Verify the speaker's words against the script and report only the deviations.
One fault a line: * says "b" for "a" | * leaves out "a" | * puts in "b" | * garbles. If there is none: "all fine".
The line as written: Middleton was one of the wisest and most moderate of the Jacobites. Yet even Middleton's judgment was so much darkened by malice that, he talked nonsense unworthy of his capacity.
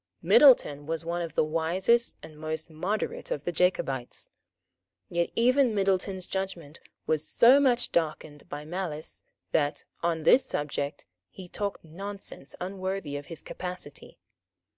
* puts in "on this subject"